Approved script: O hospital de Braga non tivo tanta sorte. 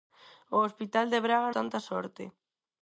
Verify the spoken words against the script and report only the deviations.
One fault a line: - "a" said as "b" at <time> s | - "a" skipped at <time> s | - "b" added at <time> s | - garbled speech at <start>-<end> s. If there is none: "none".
- "non tivo" skipped at 1.5 s